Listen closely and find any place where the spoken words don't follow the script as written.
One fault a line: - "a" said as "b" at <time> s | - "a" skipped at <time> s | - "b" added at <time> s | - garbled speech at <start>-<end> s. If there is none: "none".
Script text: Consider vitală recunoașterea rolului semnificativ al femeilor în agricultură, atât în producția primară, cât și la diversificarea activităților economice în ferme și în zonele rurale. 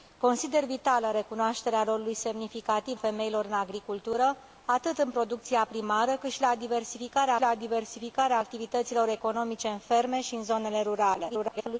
- "al" skipped at 3.0 s
- "la diversificarea" added at 7.4 s
- garbled speech at 11.3-11.8 s